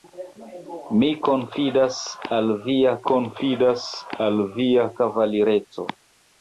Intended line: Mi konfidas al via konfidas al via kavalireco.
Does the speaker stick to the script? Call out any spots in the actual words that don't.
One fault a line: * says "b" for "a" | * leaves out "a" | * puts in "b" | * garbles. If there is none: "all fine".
all fine